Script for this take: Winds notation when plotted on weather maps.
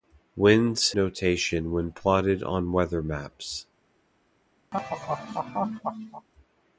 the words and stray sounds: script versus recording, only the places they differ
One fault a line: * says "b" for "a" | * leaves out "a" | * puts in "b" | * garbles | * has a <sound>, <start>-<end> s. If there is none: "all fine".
* has a laugh, 4.7-6.3 s